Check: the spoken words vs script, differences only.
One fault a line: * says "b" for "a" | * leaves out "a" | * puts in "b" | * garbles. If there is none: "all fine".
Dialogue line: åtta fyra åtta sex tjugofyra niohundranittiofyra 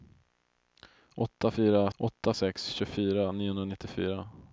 all fine